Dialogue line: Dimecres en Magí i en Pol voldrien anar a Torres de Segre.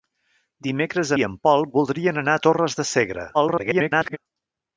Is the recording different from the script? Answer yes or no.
yes